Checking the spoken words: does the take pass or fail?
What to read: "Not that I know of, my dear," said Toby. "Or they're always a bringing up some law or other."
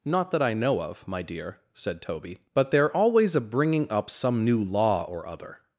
fail